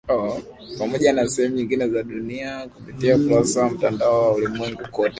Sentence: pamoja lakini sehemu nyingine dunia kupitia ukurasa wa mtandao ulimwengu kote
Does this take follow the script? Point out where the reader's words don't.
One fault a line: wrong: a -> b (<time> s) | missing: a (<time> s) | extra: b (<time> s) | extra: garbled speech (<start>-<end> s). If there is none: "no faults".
wrong: lakini -> na (1.1 s)
extra: za (1.9 s)
extra: wa (4.2 s)